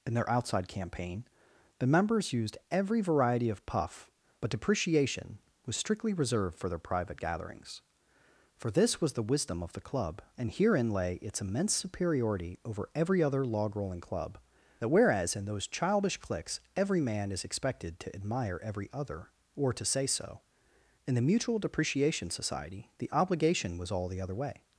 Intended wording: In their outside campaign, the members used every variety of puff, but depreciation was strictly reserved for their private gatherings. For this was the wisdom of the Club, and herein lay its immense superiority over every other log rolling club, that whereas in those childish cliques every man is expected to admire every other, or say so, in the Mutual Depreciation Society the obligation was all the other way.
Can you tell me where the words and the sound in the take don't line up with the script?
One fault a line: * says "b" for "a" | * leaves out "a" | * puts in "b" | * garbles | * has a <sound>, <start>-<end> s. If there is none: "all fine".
* puts in "to"